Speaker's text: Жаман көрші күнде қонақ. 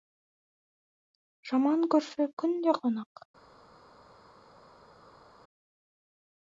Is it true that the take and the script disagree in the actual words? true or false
false